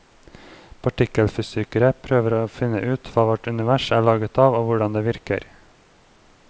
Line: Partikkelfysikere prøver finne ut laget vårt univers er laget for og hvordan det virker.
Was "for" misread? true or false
true